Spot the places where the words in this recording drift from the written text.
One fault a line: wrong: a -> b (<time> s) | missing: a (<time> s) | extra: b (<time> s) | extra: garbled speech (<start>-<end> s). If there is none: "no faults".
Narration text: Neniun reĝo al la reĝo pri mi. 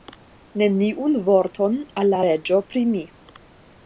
wrong: reĝo -> vorton (1.3 s)